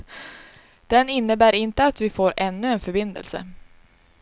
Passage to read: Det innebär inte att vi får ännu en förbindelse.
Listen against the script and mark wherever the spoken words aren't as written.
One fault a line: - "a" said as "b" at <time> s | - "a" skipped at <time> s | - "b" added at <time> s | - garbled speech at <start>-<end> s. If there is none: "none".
- "Det" said as "Den" at 0.9 s